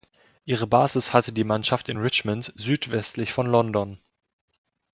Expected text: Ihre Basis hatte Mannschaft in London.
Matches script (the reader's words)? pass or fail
fail